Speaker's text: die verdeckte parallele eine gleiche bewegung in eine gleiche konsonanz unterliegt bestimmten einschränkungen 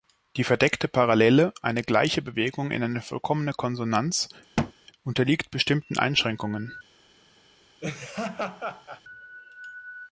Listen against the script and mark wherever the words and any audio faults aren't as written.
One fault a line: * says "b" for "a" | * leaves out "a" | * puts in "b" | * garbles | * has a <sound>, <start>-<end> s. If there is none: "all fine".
* says "vollkommene" for "gleiche"
* has a thud, 4.6-4.7 s
* has a laugh, 7.8-9.0 s